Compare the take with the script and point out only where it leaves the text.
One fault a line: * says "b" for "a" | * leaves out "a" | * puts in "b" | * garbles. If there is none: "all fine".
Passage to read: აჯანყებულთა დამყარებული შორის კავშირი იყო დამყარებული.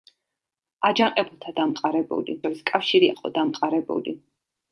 all fine